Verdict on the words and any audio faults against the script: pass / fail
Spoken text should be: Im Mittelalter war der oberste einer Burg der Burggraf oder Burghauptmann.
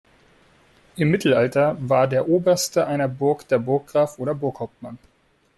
pass